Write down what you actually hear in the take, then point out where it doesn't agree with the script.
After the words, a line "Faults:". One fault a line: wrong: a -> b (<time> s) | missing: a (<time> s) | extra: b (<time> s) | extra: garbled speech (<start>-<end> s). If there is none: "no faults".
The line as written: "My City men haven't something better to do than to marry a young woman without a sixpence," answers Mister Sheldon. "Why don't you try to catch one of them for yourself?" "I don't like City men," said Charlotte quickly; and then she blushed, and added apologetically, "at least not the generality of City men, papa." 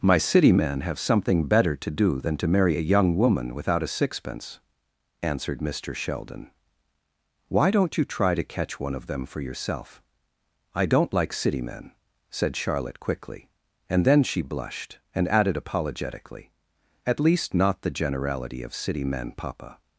"My City men have something better to do than to marry a young woman without a sixpence," answered Mister Sheldon. "Why don't you try to catch one of them for yourself?" "I don't like City men," said Charlotte quickly; and then she blushed, and added apologetically, "at least not the generality of City men, papa."
Faults:
wrong: haven't -> have (0.8 s)
wrong: answers -> answered (5.2 s)